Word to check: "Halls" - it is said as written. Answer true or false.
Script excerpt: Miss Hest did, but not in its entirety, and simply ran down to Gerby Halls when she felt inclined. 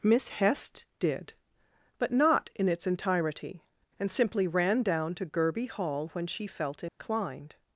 false